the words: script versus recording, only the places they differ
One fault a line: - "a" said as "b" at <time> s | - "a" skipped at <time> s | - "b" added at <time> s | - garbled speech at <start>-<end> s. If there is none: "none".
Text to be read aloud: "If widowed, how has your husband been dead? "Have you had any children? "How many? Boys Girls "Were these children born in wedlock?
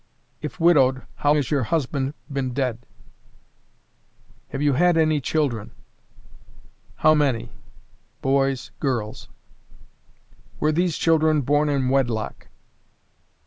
none